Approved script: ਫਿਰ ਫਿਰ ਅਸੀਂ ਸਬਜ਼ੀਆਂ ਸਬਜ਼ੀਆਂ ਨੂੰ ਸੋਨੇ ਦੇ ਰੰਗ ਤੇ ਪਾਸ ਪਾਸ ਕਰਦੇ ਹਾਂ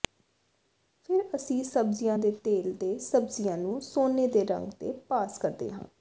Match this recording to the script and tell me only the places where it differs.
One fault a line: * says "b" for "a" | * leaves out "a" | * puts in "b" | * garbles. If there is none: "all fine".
* leaves out "ਫਿਰ"
* puts in "ਦੇ ਤੇਲ ਤੇ"
* leaves out "ਪਾਸ"